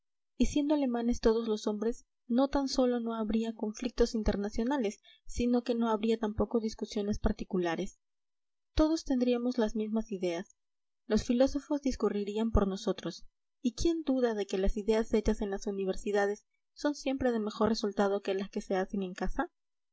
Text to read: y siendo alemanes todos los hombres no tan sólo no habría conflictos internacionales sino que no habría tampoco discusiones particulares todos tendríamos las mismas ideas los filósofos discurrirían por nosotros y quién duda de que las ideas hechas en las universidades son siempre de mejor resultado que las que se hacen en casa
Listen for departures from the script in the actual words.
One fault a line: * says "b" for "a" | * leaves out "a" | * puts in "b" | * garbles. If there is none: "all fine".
all fine